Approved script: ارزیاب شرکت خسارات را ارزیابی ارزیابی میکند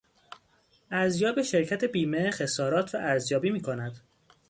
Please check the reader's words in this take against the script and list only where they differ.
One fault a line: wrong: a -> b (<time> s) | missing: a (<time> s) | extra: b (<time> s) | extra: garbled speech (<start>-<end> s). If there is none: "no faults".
extra: بیمه (1.8 s)
missing: ارزیابی (3.5 s)